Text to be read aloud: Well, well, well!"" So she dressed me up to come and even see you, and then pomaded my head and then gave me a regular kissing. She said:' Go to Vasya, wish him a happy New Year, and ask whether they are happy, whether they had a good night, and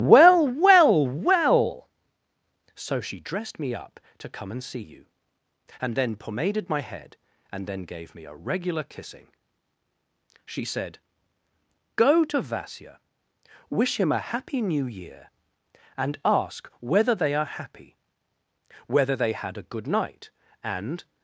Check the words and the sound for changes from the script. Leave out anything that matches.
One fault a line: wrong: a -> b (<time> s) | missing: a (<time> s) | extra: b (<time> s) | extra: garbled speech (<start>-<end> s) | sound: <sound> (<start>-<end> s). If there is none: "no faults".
missing: even (4.6 s)